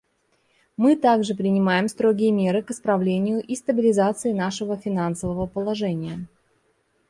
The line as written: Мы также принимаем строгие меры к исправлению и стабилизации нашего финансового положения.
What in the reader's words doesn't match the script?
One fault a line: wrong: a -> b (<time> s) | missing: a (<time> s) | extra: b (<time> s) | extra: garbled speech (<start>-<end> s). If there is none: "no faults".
no faults